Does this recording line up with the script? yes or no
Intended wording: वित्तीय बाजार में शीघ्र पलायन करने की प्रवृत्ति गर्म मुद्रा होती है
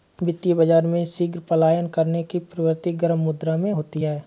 no